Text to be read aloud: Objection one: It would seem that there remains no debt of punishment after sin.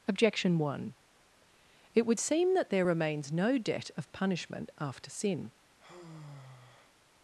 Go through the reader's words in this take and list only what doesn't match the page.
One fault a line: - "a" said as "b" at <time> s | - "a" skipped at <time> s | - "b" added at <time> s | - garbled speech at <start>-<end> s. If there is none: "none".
none